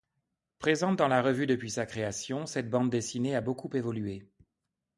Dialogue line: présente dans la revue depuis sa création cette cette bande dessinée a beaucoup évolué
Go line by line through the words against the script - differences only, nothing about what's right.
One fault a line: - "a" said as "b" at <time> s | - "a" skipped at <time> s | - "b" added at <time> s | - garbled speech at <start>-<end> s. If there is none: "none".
- "cette" skipped at 2.7 s